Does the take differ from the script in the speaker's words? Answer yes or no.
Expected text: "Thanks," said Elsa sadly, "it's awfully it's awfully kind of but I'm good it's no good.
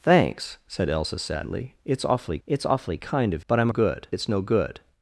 no